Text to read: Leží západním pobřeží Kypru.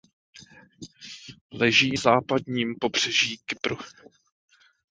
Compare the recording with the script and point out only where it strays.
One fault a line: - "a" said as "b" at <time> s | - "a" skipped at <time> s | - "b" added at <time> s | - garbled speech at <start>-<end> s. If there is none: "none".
none